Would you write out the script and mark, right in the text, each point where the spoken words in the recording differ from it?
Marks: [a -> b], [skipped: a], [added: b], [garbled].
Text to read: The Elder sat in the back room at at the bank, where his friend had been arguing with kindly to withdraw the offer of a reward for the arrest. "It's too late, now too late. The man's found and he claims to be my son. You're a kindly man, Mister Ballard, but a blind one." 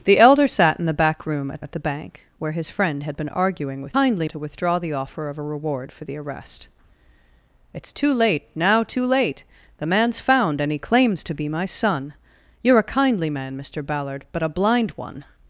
The Elder sat in the back room at at the bank, where his friend had been arguing with kindly to withdraw the offer of a reward for the arrest. "It's too late, now too late. The man's found and he claims to be my son. You're a kindly man, Mister Ballard, but a blind one."